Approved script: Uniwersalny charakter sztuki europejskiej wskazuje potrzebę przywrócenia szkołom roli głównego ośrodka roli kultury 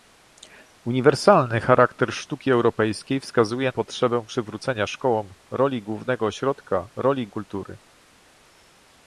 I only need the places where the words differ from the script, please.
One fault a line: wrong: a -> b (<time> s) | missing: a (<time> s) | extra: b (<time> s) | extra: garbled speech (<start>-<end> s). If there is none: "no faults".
no faults